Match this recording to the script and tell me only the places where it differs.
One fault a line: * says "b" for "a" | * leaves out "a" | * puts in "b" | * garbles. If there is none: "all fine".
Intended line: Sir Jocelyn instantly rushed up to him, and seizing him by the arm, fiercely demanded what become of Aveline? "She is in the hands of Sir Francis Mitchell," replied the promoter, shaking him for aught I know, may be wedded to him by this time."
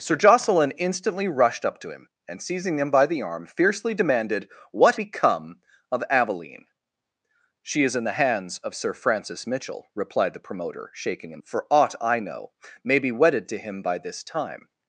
all fine